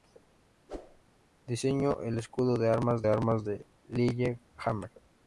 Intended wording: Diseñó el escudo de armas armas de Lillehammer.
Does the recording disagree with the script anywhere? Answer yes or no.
no